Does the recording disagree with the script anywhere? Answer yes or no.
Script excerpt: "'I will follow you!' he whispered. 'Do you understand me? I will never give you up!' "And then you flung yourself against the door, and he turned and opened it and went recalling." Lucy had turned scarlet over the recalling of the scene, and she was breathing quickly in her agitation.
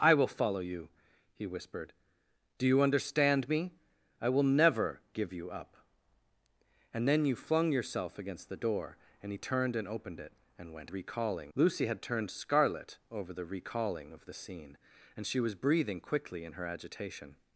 no